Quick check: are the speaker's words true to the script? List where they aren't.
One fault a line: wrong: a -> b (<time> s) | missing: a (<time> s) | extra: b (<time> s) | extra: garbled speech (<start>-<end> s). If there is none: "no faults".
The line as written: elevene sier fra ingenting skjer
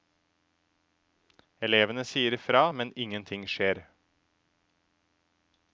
extra: men (2.7 s)